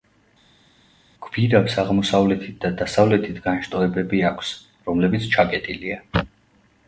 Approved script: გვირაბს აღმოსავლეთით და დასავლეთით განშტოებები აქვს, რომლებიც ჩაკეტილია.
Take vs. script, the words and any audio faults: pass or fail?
pass